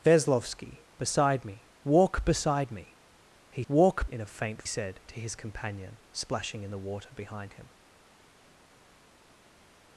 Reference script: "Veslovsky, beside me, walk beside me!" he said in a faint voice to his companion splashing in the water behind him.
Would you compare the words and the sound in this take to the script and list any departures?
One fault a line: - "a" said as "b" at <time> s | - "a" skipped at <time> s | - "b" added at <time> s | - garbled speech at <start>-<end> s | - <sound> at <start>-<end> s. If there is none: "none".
- "said" said as "walk" at 3.7 s
- "voice" said as "said" at 4.6 s